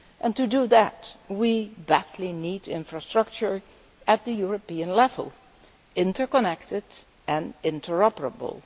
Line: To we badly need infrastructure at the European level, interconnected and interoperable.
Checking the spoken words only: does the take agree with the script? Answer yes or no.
no